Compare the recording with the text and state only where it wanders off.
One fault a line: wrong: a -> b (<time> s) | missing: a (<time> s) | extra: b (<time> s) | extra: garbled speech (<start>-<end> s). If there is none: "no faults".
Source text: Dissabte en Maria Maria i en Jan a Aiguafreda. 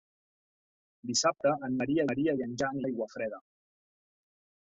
no faults